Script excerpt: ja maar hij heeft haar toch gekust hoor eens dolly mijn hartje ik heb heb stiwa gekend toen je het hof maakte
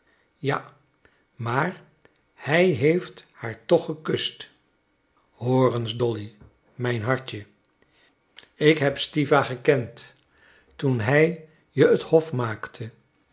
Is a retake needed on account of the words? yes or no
yes